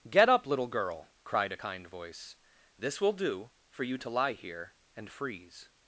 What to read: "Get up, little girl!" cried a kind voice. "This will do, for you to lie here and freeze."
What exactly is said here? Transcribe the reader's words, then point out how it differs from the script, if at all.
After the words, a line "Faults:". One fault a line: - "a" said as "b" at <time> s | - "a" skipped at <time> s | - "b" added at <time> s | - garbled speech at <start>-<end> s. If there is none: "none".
"Get up, little girl!" cried a kind voice. "This will do, for you to lie here and freeze."
Faults:
none